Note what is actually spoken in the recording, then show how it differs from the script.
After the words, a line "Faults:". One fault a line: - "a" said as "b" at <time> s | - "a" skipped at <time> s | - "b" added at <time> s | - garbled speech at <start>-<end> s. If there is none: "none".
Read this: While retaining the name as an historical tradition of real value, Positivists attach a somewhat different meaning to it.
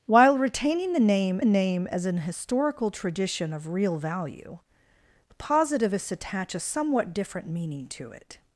While retaining the name name as an historical tradition of real value, Positivists attach a somewhat different meaning to it.
Faults:
- "name" added at 1.4 s